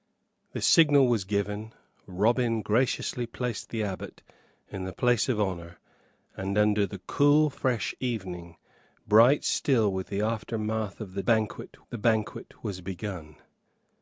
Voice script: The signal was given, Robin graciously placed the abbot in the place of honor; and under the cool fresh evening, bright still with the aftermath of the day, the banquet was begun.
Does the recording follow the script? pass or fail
fail